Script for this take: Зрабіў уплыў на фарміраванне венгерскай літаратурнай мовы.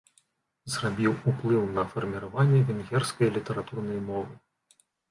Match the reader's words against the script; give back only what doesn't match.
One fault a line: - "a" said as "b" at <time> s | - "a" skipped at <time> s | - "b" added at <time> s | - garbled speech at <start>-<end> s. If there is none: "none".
none